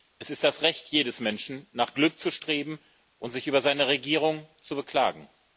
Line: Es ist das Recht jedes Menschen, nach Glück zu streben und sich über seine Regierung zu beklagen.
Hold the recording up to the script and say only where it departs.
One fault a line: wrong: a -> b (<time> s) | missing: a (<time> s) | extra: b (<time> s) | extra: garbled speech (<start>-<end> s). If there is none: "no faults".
no faults